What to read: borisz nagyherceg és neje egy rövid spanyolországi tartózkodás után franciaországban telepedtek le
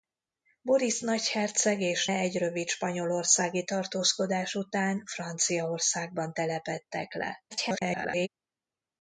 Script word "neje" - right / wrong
wrong